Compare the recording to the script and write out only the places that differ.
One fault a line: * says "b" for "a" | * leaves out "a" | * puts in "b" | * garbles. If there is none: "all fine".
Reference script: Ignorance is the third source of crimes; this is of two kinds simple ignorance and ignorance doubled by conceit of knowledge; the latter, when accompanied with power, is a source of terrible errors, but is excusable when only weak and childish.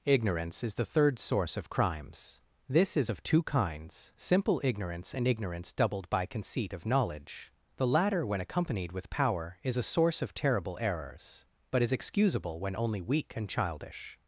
all fine